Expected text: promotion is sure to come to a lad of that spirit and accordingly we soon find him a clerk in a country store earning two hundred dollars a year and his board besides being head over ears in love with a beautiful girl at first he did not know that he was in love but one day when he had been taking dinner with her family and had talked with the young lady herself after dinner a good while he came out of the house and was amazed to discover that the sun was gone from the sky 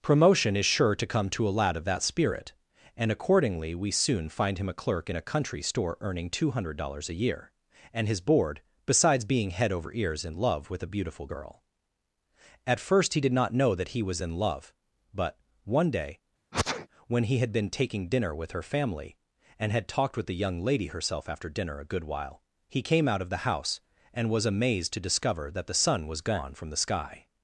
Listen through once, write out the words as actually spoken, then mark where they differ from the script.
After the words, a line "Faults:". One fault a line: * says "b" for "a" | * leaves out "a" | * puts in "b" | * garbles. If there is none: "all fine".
promotion is sure to come to a lad of that spirit and accordingly we soon find him a clerk in a country store earning two hundred dollars a year and his board besides being head over ears in love with a beautiful girl at first he did not know that he was in love but one day when he had been taking dinner with her family and had talked with the young lady herself after dinner a good while he came out of the house and was amazed to discover that the sun was gone from the sky
Faults:
all fine